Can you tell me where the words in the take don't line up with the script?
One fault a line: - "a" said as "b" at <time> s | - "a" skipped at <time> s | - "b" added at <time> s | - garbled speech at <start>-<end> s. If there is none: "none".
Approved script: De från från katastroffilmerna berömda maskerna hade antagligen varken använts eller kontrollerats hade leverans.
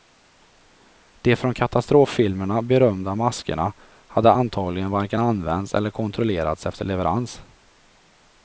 - "från" skipped at 1.6 s
- "hade" said as "efter" at 6.7 s